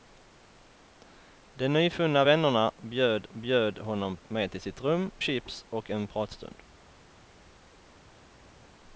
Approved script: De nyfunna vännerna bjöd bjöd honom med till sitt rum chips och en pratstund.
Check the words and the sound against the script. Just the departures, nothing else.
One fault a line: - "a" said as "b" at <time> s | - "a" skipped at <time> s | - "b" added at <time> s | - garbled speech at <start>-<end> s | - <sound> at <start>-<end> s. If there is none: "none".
none